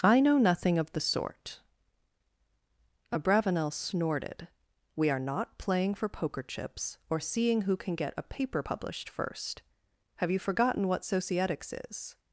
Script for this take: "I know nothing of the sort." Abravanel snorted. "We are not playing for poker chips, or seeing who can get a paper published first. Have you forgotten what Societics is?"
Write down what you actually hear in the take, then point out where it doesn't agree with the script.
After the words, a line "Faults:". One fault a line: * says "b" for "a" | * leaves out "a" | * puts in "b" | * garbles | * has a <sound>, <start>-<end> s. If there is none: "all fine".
"I know nothing of the sort." Abravanel snorted. "We are not playing for poker chips, or seeing who can get a paper published first. Have you forgotten what Societics is?"
Faults:
all fine